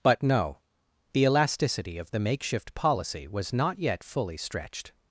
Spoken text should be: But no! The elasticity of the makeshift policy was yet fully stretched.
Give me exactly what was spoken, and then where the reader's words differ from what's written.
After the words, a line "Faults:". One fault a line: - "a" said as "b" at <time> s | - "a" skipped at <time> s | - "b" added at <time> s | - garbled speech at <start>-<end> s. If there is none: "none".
But no! The elasticity of the makeshift policy was not yet fully stretched.
Faults:
- "not" added at 3.5 s